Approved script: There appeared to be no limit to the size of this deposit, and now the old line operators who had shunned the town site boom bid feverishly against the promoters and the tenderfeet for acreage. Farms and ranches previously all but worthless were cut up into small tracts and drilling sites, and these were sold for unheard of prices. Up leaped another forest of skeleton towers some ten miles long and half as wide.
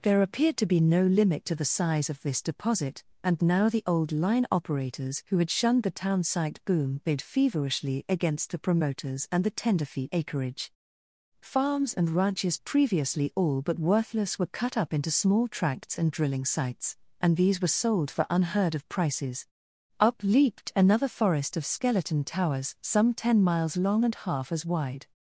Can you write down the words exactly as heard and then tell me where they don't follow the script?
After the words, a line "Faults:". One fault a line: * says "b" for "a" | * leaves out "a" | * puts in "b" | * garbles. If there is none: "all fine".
There appeared to be no limit to the size of this deposit, and now the old line operators who had shunned the town site boom bid feverishly against the promoters and the tenderfeet acreage. Farms and ranches previously all but worthless were cut up into small tracts and drilling sites, and these were sold for unheard of prices. Up leaped another forest of skeleton towers some ten miles long and half as wide.
Faults:
* leaves out "for"